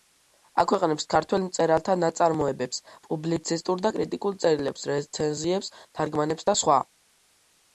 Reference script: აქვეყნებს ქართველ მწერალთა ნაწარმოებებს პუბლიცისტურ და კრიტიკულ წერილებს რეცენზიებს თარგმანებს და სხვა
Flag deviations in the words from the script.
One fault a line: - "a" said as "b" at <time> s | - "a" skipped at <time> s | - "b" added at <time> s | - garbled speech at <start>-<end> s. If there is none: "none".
none